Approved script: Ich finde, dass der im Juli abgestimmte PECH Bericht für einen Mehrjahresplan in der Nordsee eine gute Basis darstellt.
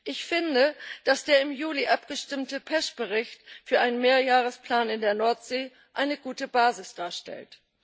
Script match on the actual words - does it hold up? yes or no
yes